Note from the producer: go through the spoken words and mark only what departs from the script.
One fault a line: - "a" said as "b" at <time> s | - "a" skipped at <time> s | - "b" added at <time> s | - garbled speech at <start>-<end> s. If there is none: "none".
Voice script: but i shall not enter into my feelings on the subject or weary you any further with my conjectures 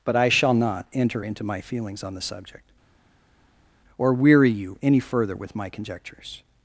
none